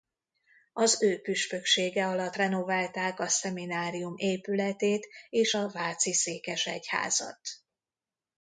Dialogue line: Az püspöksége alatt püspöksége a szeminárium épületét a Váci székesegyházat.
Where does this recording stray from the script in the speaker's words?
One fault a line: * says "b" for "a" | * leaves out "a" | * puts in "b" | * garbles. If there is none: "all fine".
* puts in "ő"
* says "renoválták" for "püspöksége"
* puts in "és"